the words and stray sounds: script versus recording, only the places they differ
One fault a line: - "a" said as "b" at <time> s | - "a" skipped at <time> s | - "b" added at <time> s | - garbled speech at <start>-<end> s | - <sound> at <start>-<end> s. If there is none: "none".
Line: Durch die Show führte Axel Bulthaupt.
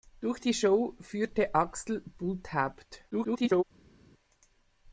- garbled speech at 3.1-3.6 s